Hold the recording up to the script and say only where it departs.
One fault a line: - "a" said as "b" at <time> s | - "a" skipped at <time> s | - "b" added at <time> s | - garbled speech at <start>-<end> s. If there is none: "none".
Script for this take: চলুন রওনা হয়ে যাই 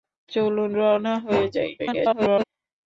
- garbled speech at 1.8-2.4 s